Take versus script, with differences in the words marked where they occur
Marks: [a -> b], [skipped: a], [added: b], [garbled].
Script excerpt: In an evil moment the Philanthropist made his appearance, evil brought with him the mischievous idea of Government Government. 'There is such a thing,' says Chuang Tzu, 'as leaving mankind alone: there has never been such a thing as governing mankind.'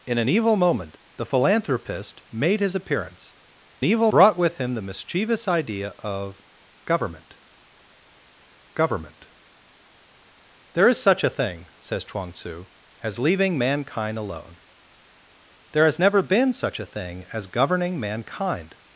In an evil moment the Philanthropist made his appearance, evil brought with him the mischievous idea of Government Government. 'There is such a thing,' says Chuang Tzu, 'as leaving mankind alone: there has never been such a thing as governing mankind.'